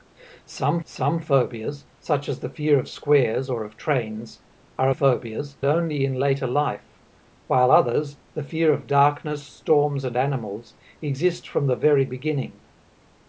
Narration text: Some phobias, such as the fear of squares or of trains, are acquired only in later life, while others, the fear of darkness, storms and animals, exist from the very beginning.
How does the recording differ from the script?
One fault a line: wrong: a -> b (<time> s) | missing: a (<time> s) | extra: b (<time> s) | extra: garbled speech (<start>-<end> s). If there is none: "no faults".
extra: some (0.9 s)
wrong: acquired -> phobias (4.9 s)